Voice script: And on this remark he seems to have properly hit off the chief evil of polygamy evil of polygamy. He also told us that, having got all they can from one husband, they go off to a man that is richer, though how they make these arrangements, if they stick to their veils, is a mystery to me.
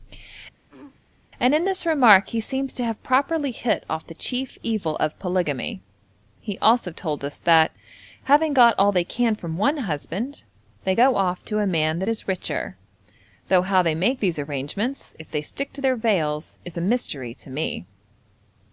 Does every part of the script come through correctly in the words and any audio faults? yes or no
no